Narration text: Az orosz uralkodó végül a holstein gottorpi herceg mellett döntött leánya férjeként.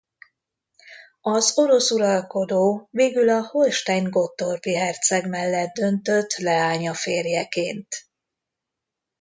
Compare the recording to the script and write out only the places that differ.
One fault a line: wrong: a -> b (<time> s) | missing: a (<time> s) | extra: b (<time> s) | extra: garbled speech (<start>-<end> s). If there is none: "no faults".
no faults